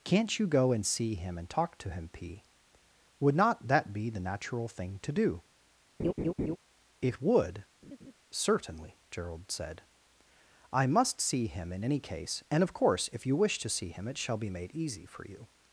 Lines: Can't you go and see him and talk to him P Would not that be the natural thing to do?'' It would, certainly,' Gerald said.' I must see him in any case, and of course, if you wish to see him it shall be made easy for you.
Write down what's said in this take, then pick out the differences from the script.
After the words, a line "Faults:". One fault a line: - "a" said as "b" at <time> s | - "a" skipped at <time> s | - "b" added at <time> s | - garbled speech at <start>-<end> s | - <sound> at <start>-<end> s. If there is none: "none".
Can't you go and see him and talk to him P Would not that be the natural thing to do?'' It would, certainly,' Gerald said.' I must see him in any case, and of course, if you wish to see him it shall be made easy for you.
Faults:
- laugh at 6.0-6.6 s
- laugh at 7.8-8.1 s